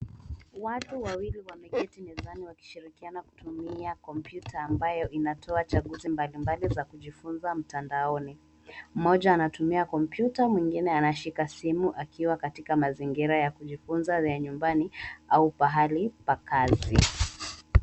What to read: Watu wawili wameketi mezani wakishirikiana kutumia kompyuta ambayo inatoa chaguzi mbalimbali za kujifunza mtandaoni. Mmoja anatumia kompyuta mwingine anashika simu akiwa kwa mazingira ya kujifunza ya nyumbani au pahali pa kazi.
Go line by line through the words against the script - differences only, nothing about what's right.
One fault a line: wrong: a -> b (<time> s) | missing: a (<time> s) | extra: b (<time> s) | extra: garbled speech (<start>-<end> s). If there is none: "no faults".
wrong: kwa -> katika (12.4 s)